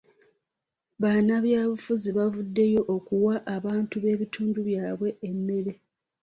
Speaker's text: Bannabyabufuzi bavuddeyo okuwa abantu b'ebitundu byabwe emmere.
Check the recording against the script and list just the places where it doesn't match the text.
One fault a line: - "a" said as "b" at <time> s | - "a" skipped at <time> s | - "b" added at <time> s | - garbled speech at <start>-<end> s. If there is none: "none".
none